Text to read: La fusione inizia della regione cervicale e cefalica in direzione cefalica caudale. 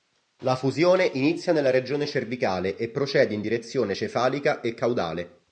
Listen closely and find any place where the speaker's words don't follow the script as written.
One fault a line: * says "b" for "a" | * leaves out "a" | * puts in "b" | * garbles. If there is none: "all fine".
* says "nella" for "della"
* says "procede" for "cefalica"
* puts in "e"